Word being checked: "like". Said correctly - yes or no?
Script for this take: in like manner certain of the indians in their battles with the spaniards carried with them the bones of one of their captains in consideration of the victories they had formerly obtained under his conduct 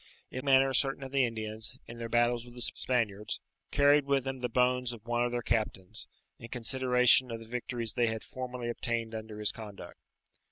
no